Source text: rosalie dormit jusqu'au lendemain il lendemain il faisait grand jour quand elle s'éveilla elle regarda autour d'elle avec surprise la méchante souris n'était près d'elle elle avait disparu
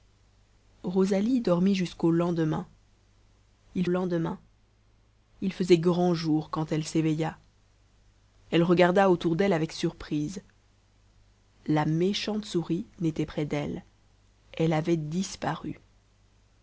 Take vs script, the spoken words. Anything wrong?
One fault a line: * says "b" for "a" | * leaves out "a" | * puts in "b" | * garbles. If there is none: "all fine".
all fine